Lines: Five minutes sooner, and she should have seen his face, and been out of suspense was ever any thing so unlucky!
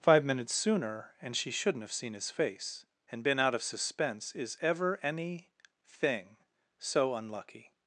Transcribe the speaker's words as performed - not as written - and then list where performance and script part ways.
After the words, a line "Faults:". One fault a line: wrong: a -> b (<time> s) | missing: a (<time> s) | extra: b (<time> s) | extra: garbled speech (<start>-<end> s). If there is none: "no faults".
Five minutes sooner, and she shouldn't have seen his face, and been out of suspense is ever any thing so unlucky!
Faults:
wrong: should -> shouldn't (1.5 s)
wrong: was -> is (4.3 s)